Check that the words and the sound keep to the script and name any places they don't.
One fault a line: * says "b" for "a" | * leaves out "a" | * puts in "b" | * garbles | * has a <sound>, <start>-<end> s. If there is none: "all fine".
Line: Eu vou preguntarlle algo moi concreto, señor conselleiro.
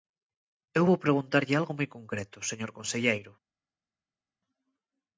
all fine